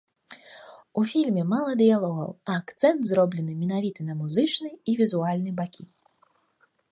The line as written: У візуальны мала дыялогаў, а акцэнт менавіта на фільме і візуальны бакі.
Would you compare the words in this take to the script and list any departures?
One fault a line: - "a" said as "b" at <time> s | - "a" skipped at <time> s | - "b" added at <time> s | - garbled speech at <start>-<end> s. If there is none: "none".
- "візуальны" said as "фільме" at 1.1 s
- "зроблены" added at 3.1 s
- "фільме" said as "музычны" at 4.2 s